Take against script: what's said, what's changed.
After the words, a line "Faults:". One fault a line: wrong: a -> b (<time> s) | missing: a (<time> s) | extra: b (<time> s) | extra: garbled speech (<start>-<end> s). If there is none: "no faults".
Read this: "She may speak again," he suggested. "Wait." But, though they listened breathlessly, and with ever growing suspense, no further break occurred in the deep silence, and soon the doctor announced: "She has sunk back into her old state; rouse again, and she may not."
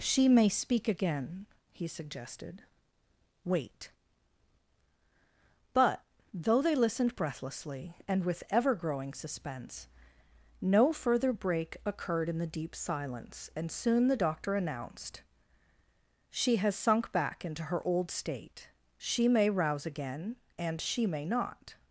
"She may speak again," he suggested. "Wait." But, though they listened breathlessly, and with ever growing suspense, no further break occurred in the deep silence, and soon the doctor announced: "She has sunk back into her old state; she may rouse again, and she may not."
Faults:
extra: she may (19.0 s)